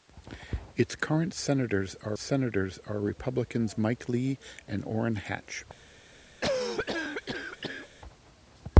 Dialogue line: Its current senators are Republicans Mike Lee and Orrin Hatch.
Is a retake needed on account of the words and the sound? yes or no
yes